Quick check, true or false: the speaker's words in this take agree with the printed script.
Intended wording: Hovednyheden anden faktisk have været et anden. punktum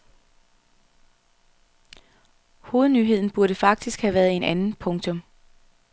false